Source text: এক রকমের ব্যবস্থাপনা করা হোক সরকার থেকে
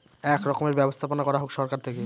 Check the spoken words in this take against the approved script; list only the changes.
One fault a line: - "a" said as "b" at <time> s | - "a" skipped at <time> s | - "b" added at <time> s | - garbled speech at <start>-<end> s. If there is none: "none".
none